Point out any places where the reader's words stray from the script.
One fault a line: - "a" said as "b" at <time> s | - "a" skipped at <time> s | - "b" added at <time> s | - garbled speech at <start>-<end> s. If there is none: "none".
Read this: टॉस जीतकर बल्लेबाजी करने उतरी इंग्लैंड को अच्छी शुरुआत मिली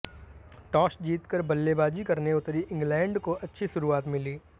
none